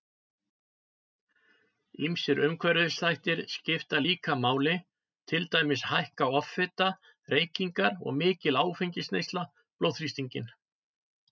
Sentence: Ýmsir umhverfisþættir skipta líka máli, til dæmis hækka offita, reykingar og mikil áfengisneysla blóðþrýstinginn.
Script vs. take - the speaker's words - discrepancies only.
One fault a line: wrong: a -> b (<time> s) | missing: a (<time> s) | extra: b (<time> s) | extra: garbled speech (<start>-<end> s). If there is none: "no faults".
no faults